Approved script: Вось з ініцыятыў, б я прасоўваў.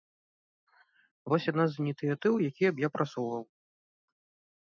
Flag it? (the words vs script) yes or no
yes